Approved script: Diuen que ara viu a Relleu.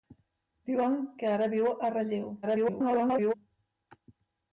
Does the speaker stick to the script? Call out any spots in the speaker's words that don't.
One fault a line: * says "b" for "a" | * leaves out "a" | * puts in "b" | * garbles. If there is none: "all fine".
* garbles